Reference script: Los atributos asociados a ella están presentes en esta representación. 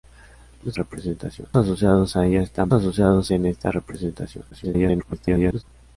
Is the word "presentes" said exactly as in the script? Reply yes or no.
no